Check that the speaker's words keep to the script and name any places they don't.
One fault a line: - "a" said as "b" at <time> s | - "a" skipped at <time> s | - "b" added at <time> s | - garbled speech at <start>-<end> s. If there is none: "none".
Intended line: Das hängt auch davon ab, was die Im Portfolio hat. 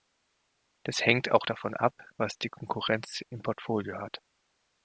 - "Konkurrenz" added at 2.5 s